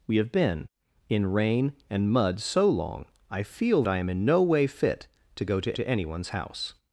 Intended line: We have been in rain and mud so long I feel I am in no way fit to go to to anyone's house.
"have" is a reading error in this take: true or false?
false